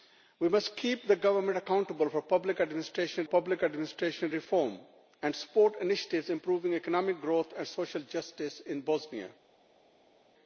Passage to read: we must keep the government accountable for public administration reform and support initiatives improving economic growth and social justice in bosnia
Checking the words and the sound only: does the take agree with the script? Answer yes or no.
no